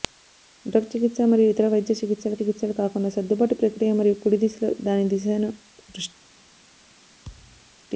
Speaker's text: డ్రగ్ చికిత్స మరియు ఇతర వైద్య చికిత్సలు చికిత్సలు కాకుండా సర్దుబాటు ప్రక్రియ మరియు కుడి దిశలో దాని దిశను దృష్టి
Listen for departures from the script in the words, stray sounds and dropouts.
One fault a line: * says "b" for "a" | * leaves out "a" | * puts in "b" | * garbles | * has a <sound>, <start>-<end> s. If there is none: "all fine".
* has a thud, 7.2-7.8 s